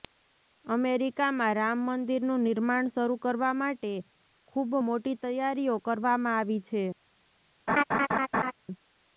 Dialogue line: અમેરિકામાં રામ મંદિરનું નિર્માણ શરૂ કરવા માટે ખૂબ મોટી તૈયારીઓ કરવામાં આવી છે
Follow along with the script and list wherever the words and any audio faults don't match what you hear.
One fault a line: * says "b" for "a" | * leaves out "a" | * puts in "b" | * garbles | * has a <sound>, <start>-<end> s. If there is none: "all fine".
* has a laugh, 7.7-8.5 s